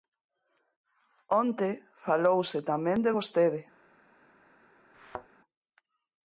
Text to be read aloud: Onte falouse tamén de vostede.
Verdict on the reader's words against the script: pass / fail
pass